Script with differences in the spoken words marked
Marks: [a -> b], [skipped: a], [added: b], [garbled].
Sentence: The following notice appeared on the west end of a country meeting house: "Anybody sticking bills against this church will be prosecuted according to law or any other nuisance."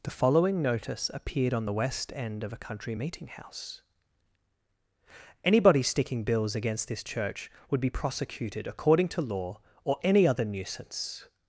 The following notice appeared on the west end of a country meeting house: "Anybody sticking bills against this church [will -> would] be prosecuted according to law or any other nuisance."